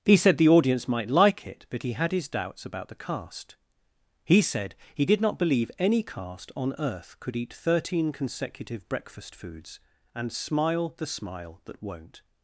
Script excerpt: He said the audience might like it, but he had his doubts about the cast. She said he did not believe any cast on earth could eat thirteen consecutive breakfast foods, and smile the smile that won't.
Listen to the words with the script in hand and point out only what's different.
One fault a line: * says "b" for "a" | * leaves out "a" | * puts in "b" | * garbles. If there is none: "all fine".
* says "He" for "She"